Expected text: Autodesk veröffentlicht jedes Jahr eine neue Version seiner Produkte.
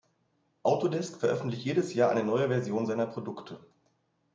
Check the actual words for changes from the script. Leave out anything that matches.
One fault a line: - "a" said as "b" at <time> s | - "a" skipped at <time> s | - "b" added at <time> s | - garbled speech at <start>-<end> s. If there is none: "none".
none